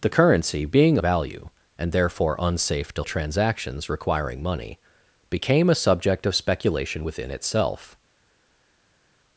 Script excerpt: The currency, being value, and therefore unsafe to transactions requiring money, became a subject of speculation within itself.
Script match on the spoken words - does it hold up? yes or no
yes